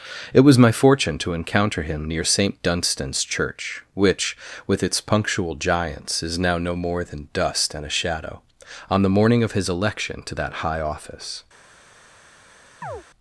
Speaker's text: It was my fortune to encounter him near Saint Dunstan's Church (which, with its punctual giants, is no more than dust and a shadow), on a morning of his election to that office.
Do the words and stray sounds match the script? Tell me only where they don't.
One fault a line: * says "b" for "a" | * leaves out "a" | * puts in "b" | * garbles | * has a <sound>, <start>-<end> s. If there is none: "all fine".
* puts in "now"
* says "the" for "a"
* puts in "high"
* has a chirp, 12.8-13.0 s